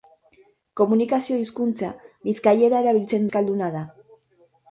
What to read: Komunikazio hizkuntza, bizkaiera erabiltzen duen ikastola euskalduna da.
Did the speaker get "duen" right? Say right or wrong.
wrong